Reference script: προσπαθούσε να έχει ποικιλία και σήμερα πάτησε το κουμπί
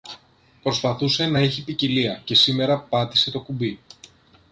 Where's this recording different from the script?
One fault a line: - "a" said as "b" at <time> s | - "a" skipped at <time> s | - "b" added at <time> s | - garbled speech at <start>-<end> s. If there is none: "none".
none